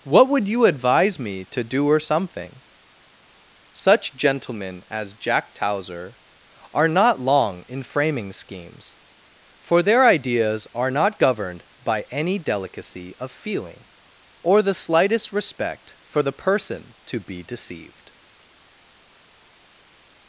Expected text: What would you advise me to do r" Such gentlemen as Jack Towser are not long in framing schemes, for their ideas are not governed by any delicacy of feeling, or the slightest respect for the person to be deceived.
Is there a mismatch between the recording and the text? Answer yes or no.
yes